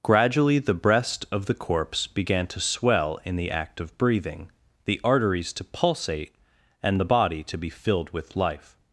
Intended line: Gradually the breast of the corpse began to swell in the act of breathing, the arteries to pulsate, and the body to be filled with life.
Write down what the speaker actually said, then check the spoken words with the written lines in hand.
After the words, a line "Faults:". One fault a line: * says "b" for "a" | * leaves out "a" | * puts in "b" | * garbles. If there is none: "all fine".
Gradually the breast of the corpse began to swell in the act of breathing, the arteries to pulsate, and the body to be filled with life.
Faults:
all fine